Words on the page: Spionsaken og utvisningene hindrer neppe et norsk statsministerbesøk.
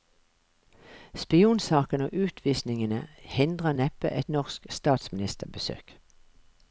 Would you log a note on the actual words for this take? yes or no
no